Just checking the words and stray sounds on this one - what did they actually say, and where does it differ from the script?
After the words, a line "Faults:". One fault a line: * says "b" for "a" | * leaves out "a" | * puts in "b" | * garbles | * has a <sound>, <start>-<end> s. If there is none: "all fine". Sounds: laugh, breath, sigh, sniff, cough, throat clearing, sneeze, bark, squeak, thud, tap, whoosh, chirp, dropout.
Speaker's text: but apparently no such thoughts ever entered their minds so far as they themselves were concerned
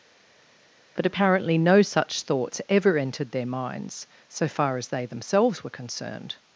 but apparently no such thoughts ever entered their minds so far as they themselves were concerned
Faults:
all fine